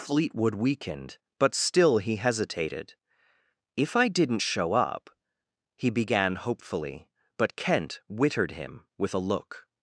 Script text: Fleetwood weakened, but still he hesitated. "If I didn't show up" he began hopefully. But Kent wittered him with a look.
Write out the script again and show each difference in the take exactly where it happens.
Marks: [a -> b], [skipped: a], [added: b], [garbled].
Fleetwood weakened, but still he hesitated. "If I didn't show up" he began hopefully. But Kent wittered him with a look.